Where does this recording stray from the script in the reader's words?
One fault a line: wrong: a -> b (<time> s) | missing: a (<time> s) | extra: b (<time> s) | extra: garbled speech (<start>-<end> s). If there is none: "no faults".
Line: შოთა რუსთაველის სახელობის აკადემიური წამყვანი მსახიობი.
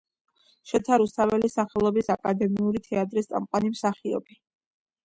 extra: თეატრის (2.9 s)